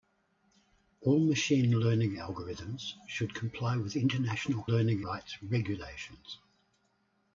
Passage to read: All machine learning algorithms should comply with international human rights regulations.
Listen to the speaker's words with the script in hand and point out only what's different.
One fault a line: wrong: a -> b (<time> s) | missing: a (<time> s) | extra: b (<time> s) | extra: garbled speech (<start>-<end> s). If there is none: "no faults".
wrong: human -> learning (4.6 s)